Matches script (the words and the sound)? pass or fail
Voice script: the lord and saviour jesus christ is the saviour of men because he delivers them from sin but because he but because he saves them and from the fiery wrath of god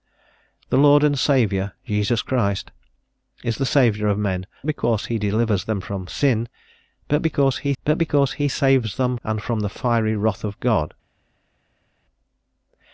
pass